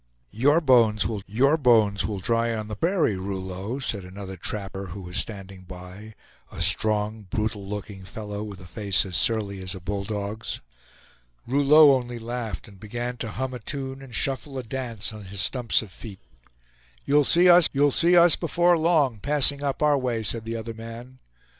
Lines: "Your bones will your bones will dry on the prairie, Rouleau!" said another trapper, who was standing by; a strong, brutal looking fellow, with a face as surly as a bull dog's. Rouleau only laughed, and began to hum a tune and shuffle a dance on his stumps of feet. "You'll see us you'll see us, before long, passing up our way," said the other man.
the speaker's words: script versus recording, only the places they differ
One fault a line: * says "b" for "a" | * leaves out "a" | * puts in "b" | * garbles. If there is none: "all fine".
all fine